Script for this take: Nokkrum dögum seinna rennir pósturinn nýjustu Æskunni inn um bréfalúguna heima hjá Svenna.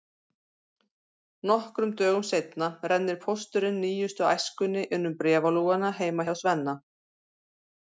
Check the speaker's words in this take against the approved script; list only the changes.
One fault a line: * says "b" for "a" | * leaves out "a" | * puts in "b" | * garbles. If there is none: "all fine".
all fine